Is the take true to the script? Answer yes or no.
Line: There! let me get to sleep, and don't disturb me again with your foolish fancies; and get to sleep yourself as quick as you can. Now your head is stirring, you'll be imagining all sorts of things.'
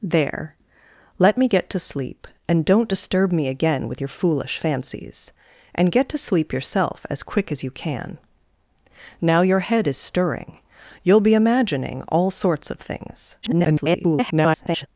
no